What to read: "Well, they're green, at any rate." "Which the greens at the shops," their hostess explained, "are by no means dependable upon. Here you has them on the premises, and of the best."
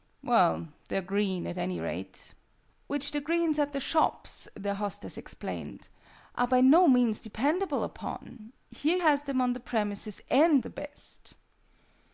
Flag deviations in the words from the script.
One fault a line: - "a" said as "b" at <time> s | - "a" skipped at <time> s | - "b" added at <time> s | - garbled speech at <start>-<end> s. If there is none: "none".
- "you" skipped at 9.0 s
- "of" skipped at 10.6 s